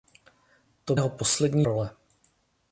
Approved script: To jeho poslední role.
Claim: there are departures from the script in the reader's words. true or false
false